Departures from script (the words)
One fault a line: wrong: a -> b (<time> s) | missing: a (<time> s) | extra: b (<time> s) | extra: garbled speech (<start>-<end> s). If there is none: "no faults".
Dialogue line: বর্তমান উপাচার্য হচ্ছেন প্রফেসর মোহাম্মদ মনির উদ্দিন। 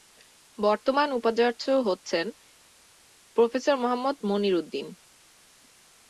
no faults